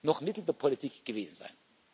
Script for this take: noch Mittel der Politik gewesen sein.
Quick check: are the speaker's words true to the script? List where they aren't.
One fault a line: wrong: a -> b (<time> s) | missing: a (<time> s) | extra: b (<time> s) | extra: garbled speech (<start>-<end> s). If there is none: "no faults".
no faults